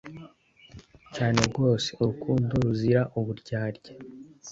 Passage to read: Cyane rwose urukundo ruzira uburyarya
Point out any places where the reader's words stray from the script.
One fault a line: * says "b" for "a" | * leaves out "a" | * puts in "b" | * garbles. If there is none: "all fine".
all fine